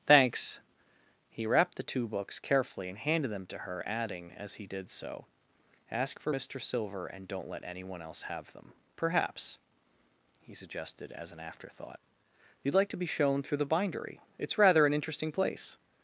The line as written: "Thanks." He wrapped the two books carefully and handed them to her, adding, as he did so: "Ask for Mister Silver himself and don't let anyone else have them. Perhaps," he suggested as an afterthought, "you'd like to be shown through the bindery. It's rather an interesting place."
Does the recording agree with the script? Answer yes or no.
no